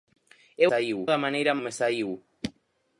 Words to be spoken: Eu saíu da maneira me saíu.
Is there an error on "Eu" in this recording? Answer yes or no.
no